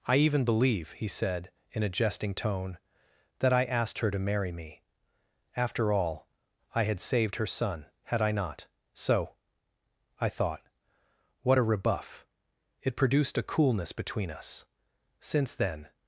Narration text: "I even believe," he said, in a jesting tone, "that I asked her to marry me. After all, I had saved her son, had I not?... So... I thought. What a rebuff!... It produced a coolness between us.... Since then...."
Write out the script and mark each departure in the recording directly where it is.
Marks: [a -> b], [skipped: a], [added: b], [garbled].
"I even believe," he said, in a jesting tone, "that I asked her to marry me. After all, I had saved her son, had I not?... So... I thought. What a rebuff!... It produced a coolness between us.... Since then...."